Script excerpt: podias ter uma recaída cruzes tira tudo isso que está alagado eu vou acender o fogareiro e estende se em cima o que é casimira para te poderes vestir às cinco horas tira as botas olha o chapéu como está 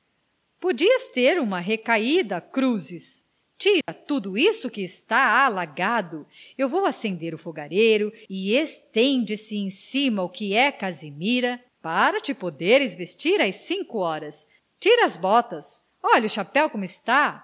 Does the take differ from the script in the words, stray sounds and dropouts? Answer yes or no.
yes